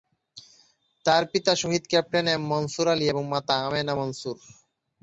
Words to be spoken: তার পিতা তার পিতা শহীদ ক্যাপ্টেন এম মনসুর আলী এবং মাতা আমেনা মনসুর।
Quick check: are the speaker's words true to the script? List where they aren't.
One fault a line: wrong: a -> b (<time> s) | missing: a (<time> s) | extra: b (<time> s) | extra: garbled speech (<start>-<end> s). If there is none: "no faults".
missing: তার পিতা (1.5 s)